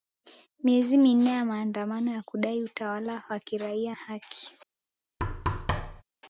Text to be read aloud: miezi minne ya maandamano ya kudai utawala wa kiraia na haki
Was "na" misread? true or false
true